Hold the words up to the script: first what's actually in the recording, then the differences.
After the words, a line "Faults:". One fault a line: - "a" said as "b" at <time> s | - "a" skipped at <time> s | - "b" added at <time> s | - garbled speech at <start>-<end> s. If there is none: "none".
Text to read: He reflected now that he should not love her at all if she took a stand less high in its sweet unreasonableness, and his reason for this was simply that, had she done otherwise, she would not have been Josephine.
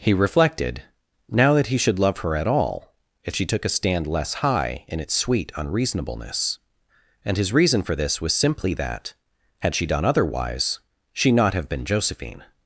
He reflected now that he should love her at all if she took a stand less high in its sweet unreasonableness, and his reason for this was simply that, had she done otherwise, she not have been Josephine.
Faults:
- "not" skipped at 2.0 s
- "would" skipped at 11.3 s